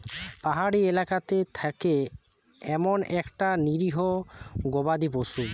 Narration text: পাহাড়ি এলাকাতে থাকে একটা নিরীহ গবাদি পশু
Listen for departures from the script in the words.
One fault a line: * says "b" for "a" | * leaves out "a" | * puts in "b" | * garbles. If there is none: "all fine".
* puts in "এমন"